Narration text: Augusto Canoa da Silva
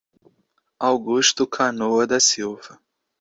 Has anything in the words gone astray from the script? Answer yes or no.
no